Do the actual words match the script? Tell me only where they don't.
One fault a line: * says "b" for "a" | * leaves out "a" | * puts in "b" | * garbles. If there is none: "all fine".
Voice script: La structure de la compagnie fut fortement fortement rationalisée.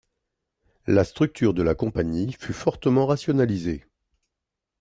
* leaves out "fortement"